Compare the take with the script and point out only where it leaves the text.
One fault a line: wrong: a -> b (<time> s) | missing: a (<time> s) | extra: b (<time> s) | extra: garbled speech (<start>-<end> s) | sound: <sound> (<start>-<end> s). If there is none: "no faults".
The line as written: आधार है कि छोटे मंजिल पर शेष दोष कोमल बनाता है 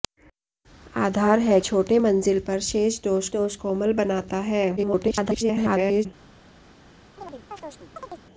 missing: कि (1.6 s)
extra: दोष (3.3 s)
extra: garbled speech (4.8-6.1 s)
sound: chirp (7.2-8.2 s)